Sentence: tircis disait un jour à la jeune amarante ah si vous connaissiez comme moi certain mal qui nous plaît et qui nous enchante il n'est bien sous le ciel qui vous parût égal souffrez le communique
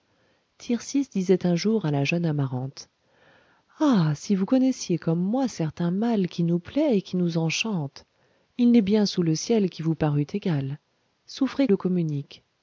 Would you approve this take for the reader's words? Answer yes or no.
yes